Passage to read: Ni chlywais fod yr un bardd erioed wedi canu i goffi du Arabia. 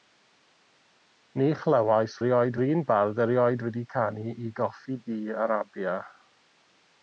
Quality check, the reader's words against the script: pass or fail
fail